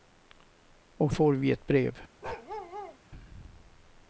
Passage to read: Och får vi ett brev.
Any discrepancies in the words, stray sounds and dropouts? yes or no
yes